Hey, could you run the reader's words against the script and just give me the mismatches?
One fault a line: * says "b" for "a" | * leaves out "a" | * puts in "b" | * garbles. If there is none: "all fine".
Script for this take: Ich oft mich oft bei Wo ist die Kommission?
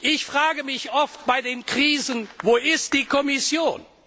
* says "frage" for "oft"
* puts in "den Krisen"